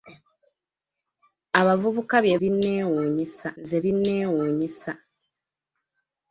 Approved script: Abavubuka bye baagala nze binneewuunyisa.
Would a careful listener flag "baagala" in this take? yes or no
yes